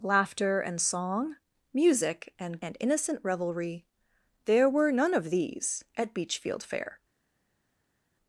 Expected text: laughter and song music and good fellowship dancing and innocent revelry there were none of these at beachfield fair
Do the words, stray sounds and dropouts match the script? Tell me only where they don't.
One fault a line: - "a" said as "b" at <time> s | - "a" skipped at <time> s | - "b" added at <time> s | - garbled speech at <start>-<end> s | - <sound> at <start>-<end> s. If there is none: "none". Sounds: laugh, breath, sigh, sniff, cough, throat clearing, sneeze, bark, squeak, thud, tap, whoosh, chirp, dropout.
- "good fellowship dancing" skipped at 2.6 s